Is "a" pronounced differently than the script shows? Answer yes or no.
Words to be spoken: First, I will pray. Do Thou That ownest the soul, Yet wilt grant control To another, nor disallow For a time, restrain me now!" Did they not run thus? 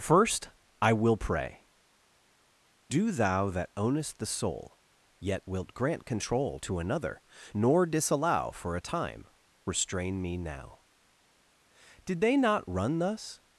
no